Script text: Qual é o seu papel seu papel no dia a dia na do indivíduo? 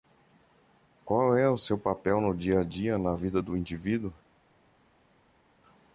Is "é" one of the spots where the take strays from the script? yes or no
no